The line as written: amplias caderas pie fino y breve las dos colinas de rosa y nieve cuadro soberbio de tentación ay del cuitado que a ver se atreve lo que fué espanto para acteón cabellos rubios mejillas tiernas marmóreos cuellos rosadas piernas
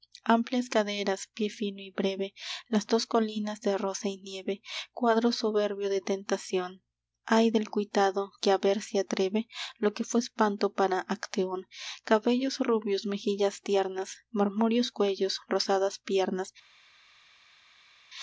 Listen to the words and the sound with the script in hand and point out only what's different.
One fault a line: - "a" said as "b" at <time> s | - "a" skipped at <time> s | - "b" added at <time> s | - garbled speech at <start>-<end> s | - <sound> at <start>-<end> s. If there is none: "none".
none